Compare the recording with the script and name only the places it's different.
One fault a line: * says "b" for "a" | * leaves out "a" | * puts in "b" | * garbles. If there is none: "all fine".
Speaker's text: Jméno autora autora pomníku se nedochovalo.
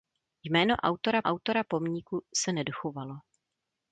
all fine